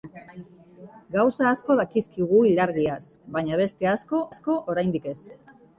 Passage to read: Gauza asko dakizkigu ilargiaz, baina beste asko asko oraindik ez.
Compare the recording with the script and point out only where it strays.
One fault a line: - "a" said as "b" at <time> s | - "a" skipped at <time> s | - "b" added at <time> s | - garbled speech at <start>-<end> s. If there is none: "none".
none